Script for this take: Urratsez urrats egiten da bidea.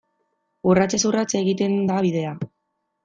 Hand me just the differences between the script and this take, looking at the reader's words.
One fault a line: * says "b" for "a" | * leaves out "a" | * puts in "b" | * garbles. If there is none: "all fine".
all fine